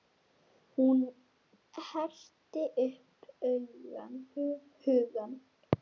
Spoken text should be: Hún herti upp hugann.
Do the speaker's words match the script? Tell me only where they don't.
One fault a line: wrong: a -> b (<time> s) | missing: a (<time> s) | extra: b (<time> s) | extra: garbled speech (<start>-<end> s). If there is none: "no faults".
no faults